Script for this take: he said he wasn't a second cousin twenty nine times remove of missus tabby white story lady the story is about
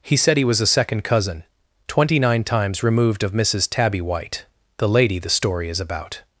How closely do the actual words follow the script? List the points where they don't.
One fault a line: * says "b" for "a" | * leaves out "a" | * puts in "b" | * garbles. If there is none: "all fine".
* says "was" for "wasn't"
* says "removed" for "remove"
* says "the" for "story"